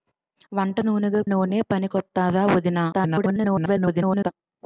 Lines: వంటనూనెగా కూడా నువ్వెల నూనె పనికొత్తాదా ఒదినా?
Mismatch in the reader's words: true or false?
true